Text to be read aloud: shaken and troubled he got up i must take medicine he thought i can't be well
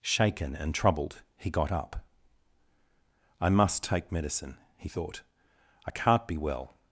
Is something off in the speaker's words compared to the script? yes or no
no